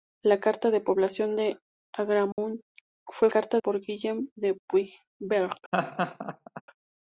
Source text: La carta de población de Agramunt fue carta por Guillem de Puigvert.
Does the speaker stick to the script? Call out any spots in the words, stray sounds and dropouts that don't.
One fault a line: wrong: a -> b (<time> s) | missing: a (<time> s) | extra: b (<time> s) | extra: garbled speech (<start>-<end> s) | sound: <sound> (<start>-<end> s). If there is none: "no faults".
sound: dropout (2.3-2.4 s)
sound: laugh (5.7-6.6 s)